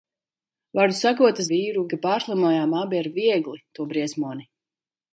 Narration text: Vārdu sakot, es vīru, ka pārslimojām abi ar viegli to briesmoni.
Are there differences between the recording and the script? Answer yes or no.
no